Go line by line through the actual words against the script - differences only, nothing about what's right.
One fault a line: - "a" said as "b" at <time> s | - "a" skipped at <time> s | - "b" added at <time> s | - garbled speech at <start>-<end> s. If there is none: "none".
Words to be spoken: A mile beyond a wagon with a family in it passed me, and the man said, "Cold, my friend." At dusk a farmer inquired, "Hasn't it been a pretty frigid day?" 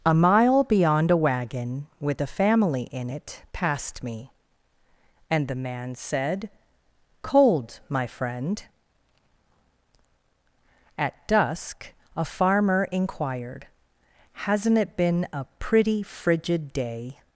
none